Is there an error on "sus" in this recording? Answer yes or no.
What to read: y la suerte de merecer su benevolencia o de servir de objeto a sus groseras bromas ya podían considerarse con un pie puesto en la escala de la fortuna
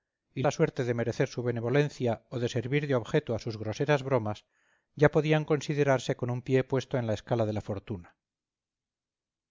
no